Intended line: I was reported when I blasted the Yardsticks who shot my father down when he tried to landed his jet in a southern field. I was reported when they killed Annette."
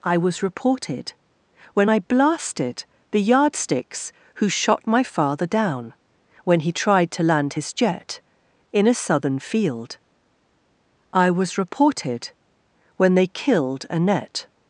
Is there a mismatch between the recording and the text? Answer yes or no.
yes